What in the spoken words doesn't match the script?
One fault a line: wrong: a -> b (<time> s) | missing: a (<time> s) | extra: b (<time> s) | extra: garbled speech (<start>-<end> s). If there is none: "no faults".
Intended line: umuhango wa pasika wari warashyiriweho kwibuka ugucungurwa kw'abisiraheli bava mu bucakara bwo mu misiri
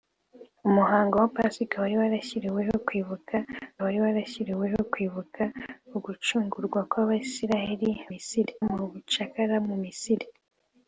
extra: wari warashyiriweho kwibuka (3.9 s)
wrong: bava -> misiri (8.1 s)
missing: bwo (9.6 s)